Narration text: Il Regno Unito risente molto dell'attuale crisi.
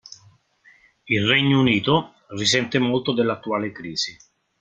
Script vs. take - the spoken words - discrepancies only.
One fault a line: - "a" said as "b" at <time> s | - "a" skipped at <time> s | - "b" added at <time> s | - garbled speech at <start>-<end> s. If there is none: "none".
none